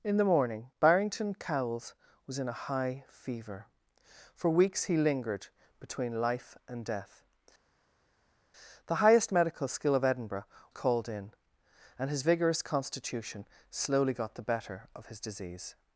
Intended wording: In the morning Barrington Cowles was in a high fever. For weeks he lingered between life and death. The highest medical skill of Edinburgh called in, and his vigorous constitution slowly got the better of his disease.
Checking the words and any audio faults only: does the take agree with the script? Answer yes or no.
yes